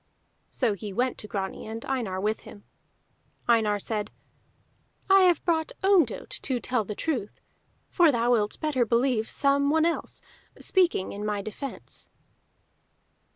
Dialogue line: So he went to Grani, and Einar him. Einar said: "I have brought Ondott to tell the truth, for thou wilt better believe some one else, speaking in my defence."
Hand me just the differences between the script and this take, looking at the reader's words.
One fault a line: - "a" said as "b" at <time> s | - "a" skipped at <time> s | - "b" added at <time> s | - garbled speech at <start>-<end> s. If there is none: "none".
- "with" added at 2.2 s